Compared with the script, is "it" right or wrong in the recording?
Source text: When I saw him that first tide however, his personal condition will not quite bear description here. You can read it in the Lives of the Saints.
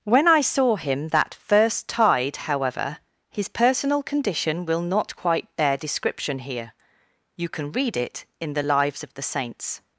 right